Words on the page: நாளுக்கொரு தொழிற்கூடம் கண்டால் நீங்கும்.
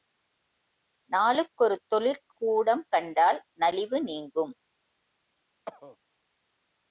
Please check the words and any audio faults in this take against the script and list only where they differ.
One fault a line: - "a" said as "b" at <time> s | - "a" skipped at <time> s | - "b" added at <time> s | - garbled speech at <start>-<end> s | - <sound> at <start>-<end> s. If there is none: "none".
- "நலிவு" added at 3.5 s
- cough at 5.7-6.0 s